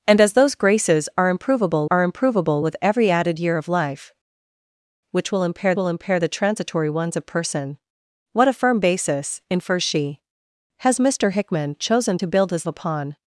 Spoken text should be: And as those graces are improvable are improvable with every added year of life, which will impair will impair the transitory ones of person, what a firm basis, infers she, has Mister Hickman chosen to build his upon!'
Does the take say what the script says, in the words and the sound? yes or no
yes